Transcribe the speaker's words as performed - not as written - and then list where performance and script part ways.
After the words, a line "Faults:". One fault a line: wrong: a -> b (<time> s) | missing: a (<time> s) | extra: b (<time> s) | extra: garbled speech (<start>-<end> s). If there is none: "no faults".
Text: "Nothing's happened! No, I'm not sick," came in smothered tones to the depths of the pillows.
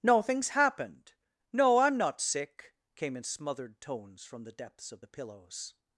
"Nothing's happened! No, I'm not sick," came in smothered tones from the depths of the pillows.
Faults:
wrong: to -> from (4.2 s)